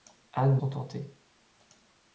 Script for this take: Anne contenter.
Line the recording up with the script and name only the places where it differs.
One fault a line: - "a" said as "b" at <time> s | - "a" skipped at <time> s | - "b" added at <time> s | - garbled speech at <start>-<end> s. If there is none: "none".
none